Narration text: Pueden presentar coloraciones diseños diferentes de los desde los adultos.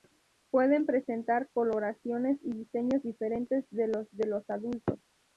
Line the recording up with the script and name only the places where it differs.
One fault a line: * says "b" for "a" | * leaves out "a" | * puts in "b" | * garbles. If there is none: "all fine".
* puts in "y"
* says "de" for "desde"